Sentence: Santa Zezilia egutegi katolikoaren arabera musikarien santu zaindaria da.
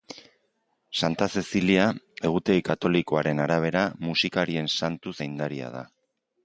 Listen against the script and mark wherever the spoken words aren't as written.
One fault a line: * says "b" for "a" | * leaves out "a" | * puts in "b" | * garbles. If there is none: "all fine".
all fine